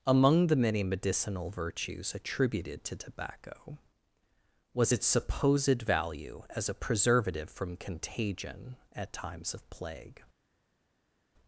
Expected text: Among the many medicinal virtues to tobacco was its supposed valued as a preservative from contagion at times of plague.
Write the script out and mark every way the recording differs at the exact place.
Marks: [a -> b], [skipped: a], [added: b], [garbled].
Among the many medicinal virtues [added: attributed] to tobacco was its supposed [valued -> value] as a preservative from contagion at times of plague.